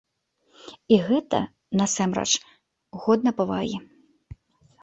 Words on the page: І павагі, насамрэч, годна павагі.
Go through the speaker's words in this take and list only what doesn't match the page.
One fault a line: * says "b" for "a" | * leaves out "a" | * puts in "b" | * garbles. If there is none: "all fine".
* says "гэта" for "павагі"